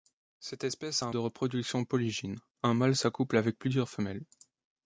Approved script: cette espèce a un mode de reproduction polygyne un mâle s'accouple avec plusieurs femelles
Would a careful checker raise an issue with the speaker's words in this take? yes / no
yes